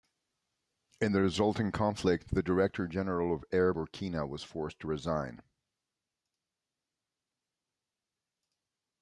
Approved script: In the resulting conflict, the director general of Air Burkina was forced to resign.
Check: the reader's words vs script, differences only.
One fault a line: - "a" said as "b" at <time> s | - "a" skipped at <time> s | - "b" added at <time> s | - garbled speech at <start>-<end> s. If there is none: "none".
none